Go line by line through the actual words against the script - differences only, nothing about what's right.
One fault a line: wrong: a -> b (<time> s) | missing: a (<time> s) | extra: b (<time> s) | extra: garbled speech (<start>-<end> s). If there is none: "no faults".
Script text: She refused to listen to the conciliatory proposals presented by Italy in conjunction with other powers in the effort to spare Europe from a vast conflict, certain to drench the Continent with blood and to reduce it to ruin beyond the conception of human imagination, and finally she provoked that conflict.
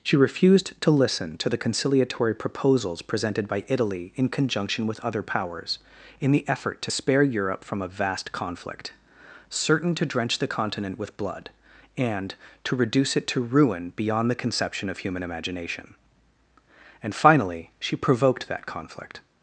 no faults